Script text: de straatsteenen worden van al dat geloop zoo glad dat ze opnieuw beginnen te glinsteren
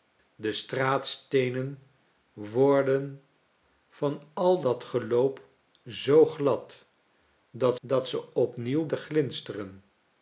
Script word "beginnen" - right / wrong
wrong